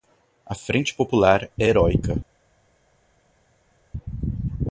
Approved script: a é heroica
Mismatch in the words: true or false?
true